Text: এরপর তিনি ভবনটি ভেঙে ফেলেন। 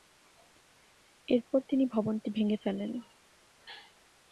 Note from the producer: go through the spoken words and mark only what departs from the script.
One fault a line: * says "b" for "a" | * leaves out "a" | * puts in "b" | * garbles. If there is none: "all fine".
all fine